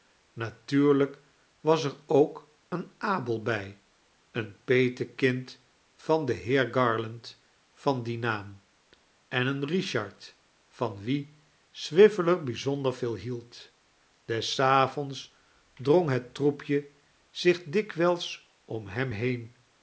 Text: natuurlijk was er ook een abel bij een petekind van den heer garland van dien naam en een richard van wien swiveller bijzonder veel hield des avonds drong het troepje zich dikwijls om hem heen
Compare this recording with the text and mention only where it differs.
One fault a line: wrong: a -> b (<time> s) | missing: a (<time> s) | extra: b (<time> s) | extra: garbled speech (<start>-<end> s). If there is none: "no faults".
no faults